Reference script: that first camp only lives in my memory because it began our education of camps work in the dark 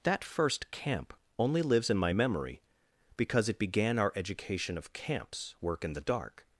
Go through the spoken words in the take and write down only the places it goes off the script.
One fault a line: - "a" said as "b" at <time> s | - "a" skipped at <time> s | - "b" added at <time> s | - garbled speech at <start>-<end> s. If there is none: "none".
none